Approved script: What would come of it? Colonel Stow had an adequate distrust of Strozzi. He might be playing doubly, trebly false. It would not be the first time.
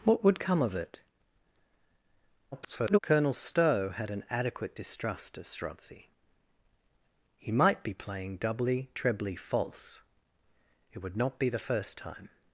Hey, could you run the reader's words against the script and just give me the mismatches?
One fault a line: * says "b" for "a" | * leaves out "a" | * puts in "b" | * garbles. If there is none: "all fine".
* garbles